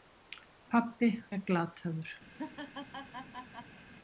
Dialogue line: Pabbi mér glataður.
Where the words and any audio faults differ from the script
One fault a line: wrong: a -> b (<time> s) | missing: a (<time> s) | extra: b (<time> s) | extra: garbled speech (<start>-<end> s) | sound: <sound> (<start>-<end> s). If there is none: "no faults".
sound: laugh (2.3-3.8 s)